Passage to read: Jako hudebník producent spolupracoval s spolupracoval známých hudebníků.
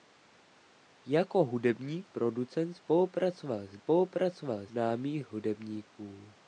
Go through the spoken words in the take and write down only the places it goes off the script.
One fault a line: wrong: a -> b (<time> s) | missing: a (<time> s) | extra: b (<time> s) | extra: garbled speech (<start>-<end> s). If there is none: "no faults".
no faults